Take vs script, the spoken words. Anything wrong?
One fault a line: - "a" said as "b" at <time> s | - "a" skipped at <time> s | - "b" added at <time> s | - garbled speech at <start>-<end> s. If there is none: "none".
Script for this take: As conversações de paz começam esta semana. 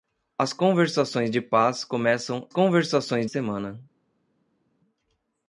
- "esta" said as "conversações" at 2.5 s